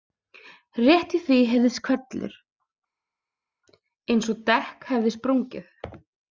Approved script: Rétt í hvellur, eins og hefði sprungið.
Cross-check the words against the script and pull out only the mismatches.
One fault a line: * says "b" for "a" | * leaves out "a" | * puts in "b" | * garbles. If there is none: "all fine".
* puts in "því heyrðist"
* puts in "dekk"